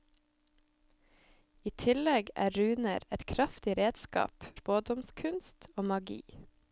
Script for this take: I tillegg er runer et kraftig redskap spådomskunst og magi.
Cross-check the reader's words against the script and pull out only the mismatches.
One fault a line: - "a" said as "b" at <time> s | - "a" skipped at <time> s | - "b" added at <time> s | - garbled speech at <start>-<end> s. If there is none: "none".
none